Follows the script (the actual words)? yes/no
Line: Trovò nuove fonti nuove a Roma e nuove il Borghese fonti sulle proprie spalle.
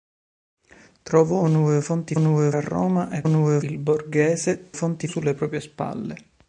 yes